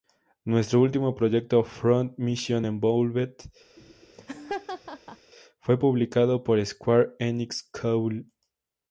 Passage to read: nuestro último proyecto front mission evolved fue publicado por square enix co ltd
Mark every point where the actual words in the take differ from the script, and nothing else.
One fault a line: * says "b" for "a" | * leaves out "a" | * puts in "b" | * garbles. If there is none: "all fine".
all fine